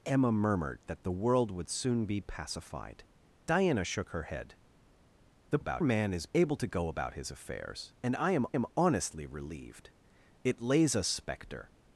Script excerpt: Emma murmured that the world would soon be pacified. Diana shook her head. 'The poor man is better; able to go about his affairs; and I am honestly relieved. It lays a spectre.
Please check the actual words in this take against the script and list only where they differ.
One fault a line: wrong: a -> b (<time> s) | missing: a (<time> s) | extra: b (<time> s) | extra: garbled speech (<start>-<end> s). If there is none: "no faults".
wrong: poor -> about (5.6 s)
missing: better (6.3 s)
extra: am (8.5 s)